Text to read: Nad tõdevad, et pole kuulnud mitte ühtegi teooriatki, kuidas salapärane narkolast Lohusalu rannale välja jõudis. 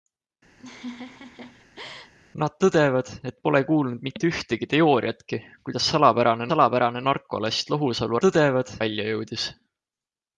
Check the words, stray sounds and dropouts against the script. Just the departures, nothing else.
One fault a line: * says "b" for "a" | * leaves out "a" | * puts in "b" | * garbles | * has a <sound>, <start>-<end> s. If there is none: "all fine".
* has a laugh, 0.6-2.1 s
* puts in "salapärane"
* says "tõdevad" for "rannale"